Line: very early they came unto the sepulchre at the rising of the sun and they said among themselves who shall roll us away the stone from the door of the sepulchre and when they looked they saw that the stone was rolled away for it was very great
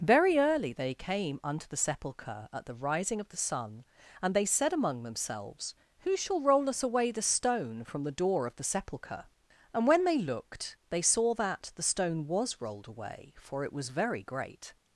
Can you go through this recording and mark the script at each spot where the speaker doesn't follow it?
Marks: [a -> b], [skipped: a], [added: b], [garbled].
very early they came unto the sepulchre at the rising of the sun and they said among themselves who shall roll us away the stone from the door of the sepulchre and when they looked they saw that the stone was rolled away for it was very great